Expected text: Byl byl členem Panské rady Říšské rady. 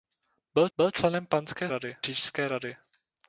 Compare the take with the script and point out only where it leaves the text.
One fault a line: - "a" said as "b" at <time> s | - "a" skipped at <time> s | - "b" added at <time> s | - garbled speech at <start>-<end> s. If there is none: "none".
none